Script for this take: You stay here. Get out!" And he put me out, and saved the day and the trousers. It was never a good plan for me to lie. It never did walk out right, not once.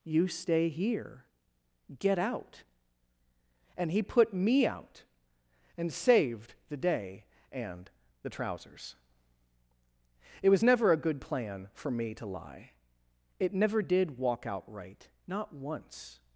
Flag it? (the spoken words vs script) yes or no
no